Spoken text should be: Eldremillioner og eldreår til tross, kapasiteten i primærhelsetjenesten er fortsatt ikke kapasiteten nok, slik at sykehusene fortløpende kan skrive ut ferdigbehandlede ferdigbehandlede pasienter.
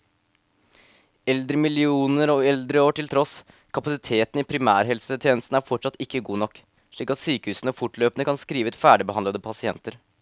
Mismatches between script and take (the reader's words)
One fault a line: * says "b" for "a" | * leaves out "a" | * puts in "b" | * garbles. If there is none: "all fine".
* says "god" for "kapasiteten"
* leaves out "ferdigbehandlede"